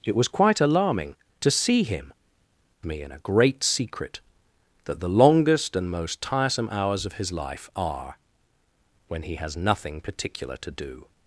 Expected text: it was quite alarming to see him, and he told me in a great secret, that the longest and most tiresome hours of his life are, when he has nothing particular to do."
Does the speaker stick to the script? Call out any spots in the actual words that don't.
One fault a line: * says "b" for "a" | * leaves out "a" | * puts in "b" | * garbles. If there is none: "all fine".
* leaves out "and he told"